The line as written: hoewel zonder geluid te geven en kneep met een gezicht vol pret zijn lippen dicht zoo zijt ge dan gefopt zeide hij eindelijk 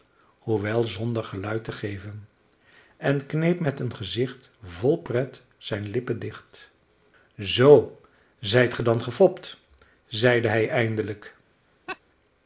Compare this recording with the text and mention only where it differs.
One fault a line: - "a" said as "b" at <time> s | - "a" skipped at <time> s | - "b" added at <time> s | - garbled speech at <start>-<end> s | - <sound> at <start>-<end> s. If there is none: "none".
- laugh at 11.9-12.0 s